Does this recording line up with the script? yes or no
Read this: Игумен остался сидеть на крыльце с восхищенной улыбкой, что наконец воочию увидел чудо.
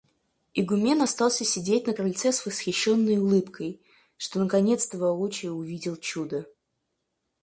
no